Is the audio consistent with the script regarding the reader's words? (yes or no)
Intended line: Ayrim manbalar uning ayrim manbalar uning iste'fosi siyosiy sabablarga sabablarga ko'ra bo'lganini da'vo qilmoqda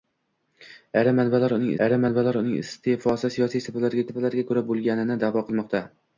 yes